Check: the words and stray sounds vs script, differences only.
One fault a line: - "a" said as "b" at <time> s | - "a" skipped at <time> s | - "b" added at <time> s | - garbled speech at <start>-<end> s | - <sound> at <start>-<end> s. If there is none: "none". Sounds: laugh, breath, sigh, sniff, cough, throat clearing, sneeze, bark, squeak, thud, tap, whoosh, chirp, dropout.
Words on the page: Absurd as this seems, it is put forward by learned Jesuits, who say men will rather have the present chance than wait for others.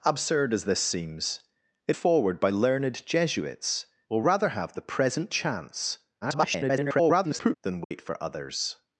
- "is put" skipped at 1.9 s
- "who say men" skipped at 3.9 s
- garbled speech at 6.2-7.5 s
- dropout at 7.8-7.9 s